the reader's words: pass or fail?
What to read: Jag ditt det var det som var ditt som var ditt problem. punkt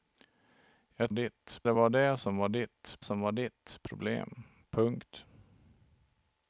pass